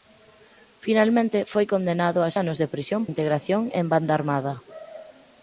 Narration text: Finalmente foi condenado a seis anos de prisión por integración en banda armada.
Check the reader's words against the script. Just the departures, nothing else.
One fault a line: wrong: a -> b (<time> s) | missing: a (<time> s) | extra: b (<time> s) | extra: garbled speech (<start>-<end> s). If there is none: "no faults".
missing: seis (2.3 s)
missing: por (3.0 s)